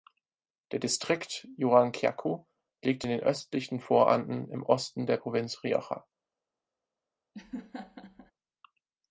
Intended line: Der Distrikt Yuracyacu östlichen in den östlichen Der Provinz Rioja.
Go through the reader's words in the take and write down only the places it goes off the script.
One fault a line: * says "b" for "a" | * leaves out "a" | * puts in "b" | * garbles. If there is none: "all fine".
* says "liegt" for "östlichen"
* puts in "Voranden im Osten"